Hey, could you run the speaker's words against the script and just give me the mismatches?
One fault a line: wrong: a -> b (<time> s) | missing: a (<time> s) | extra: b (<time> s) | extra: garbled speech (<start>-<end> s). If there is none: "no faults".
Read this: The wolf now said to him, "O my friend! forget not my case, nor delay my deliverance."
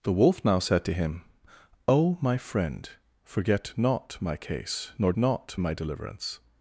wrong: delay -> not (5.2 s)